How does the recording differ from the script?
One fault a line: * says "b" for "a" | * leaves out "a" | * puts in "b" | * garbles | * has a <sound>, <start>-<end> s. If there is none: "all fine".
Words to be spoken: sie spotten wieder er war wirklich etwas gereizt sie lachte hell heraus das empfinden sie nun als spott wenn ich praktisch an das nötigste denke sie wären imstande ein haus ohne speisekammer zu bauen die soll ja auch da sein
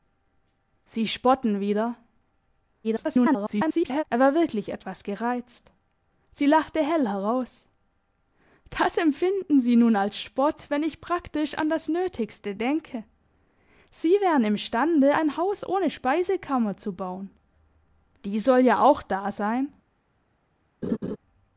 * garbles
* has a laugh, 20.8-21.2 s